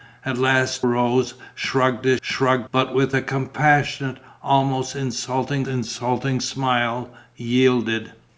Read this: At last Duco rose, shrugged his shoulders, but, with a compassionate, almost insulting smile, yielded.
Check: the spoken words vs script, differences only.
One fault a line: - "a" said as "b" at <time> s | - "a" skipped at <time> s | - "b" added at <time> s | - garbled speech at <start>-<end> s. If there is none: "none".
- "Duco" skipped at 0.8 s
- "shoulders" said as "shrugged" at 2.2 s
- "insulting" added at 5.7 s